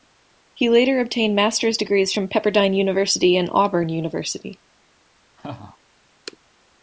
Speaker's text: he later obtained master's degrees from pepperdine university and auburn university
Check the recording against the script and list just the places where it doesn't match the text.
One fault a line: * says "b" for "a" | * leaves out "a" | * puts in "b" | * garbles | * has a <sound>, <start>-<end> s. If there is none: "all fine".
* has a laugh, 5.4-5.8 s